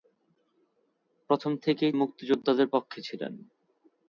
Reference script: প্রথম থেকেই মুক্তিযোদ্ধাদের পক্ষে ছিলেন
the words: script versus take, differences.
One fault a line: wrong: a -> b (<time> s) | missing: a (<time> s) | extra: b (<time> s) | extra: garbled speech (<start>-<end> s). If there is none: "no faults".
no faults